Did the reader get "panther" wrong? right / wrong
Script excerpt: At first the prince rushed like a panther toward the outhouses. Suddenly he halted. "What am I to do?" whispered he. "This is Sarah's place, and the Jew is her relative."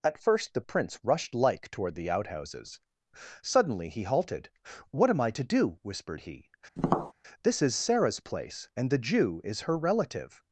wrong